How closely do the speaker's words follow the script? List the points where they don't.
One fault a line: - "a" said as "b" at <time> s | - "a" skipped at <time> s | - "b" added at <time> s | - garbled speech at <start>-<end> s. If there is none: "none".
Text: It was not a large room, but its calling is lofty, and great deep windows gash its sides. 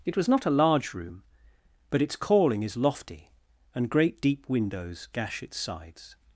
none